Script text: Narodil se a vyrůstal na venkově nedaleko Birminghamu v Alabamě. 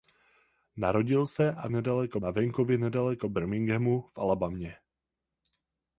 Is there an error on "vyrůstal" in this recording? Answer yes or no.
yes